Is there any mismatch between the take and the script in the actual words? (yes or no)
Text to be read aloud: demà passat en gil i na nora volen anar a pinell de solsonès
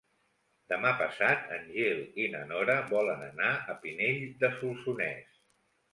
no